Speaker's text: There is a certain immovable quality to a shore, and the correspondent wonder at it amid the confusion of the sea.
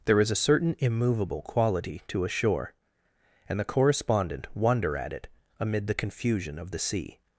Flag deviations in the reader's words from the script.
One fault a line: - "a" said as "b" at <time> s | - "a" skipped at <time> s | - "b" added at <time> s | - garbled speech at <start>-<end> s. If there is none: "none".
none